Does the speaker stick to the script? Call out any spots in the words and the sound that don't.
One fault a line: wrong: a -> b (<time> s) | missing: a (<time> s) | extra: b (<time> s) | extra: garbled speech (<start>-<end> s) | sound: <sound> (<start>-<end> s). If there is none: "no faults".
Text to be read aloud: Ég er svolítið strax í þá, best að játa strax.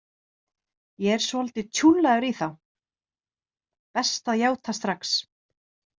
wrong: strax -> tjúllaður (1.8 s)